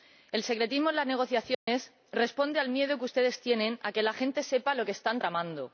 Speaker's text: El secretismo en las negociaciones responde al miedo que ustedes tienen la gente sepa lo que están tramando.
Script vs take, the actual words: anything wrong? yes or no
yes